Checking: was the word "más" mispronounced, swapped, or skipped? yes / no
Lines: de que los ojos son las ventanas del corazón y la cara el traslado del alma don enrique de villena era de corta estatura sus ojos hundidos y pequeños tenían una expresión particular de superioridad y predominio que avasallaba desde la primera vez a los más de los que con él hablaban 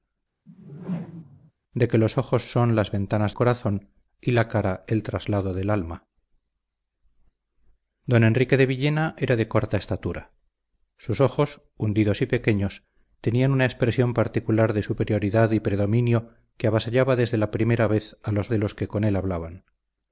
yes